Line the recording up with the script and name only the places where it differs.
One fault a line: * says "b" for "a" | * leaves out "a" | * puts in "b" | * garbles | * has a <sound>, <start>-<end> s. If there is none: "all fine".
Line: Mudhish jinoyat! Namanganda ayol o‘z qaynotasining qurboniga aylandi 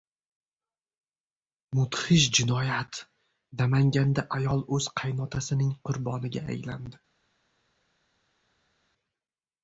all fine